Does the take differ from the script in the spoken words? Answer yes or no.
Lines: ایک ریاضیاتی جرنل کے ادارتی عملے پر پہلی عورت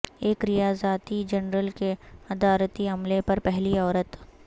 no